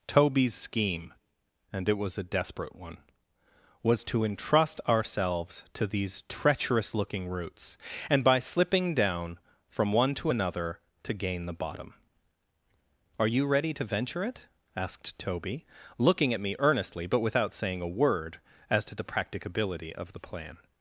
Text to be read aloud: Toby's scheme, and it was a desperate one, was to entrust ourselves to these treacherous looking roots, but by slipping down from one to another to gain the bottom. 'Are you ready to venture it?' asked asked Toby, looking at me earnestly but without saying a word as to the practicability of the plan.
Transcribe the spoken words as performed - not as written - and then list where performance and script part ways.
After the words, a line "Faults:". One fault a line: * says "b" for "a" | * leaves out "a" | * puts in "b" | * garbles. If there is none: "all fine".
Toby's scheme, and it was a desperate one, was to entrust ourselves to these treacherous looking roots, and by slipping down from one to another to gain the bottom. 'Are you ready to venture it?' asked Toby, looking at me earnestly but without saying a word as to the practicability of the plan.
Faults:
* says "and" for "but"
* leaves out "asked"